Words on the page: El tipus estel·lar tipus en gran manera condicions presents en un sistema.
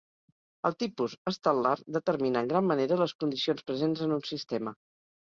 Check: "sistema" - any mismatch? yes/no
no